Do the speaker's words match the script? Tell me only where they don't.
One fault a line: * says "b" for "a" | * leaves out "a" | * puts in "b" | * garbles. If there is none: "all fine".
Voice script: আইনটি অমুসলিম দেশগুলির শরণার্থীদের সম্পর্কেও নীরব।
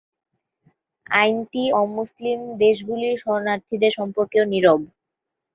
all fine